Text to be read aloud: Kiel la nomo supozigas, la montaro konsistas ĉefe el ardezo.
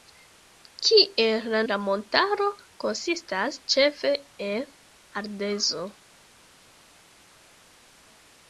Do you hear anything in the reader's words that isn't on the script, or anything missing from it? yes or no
yes